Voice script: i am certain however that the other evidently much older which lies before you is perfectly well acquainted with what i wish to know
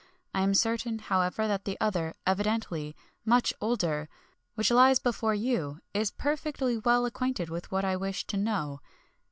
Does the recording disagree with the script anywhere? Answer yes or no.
no